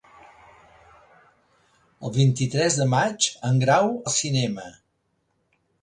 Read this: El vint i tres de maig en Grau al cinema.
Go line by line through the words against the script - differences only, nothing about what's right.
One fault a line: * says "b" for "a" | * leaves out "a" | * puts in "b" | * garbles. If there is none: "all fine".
all fine